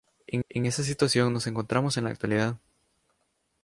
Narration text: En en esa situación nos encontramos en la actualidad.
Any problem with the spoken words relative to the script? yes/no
no